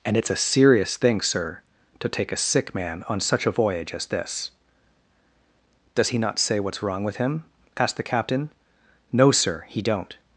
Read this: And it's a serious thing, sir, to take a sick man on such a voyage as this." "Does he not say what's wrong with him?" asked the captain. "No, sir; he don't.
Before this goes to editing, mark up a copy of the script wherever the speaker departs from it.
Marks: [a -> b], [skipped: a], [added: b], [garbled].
And it's a serious thing, sir, to take a sick man on such a voyage as this." "Does he not say what's wrong with him?" asked the captain. "No, sir; he don't.